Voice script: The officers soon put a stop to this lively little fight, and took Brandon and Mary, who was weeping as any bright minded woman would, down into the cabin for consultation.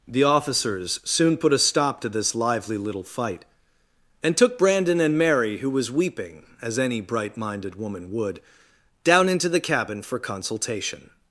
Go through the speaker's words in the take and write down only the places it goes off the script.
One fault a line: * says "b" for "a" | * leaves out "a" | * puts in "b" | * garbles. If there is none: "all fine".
all fine